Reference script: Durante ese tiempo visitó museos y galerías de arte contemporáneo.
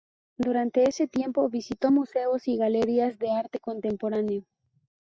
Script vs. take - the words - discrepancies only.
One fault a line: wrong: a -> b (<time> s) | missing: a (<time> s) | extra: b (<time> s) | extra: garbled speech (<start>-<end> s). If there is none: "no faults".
no faults